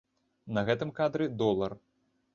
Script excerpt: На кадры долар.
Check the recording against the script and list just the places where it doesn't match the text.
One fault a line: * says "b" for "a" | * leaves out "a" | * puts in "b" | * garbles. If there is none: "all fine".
* puts in "гэтым"